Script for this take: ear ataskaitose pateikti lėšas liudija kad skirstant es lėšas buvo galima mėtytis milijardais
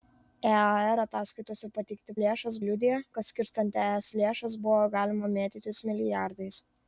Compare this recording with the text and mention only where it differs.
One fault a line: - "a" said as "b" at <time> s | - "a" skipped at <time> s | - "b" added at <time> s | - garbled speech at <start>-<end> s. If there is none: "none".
none